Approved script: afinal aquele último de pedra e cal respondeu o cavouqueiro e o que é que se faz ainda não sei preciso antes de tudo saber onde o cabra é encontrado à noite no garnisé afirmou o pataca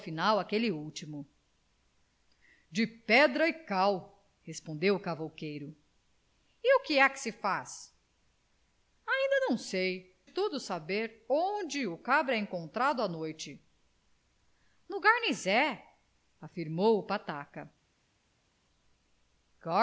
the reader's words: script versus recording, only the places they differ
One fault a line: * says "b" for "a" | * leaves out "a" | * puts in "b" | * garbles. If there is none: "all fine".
* leaves out "preciso antes de"